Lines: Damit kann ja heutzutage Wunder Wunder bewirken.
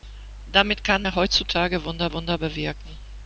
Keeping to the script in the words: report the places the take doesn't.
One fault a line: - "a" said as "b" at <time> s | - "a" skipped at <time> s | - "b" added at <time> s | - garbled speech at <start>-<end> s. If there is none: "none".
none